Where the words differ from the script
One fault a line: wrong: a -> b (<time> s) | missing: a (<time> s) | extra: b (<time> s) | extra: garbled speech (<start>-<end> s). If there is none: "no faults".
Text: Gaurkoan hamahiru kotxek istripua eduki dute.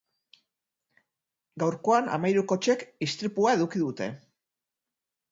no faults